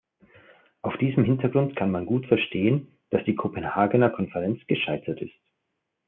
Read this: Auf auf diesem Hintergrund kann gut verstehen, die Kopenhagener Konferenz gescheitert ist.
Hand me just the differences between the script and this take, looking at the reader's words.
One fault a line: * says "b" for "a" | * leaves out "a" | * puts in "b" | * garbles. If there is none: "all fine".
* leaves out "auf"
* puts in "man"
* puts in "dass"